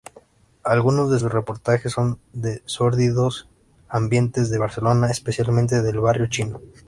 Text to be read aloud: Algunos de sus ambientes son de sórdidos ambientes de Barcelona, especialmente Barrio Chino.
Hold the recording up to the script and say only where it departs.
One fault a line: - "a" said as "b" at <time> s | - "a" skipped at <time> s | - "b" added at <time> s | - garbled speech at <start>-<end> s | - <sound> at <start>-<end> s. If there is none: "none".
- "ambientes" said as "reportajes" at 1.3 s
- "del" added at 5.8 s